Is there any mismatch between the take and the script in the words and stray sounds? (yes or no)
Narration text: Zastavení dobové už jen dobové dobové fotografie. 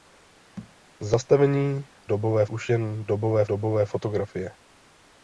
yes